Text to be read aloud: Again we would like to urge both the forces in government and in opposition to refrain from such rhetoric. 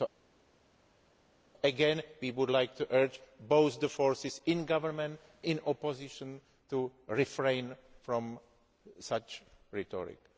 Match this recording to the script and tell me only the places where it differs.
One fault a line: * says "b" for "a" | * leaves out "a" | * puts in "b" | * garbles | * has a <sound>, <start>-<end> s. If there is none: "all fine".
* leaves out "and"